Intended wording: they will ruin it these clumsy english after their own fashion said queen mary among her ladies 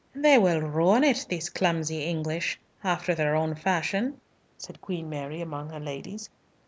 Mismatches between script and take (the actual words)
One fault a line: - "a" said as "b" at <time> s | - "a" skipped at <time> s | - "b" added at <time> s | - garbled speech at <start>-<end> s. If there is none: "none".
none